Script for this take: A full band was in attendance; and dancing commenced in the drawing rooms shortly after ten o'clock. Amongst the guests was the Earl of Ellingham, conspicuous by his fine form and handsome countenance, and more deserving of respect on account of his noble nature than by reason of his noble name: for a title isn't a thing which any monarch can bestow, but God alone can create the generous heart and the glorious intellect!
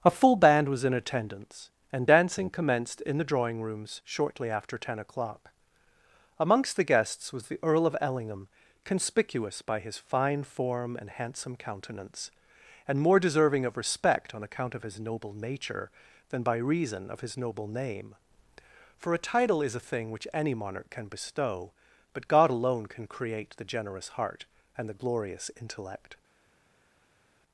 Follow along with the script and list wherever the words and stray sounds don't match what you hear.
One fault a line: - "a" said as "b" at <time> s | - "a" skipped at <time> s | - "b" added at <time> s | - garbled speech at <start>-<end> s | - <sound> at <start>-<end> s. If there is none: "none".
- "isn't" said as "is" at 19.6 s